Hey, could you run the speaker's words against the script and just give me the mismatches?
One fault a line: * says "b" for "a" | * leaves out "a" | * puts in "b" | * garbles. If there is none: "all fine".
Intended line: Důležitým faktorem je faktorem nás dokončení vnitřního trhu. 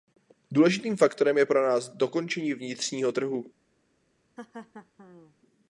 * says "pro" for "faktorem"